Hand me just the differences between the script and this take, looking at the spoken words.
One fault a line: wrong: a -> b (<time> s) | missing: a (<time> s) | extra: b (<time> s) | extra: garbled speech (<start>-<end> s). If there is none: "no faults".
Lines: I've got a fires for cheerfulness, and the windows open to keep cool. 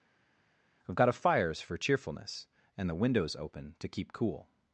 no faults